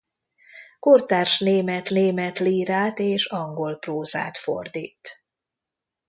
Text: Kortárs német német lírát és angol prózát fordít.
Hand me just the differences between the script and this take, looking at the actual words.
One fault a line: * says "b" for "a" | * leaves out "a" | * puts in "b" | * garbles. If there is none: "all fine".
all fine